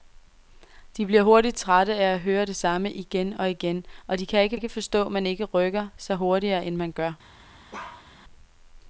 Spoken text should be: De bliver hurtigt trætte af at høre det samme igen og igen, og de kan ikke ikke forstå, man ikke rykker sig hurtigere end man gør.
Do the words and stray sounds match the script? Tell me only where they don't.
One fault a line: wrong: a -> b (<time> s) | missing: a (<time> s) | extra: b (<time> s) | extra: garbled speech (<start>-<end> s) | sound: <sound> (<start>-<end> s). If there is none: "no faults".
sound: bark (7.7-8.1 s)